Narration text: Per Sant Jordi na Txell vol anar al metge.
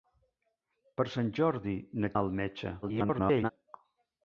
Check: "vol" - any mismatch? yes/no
yes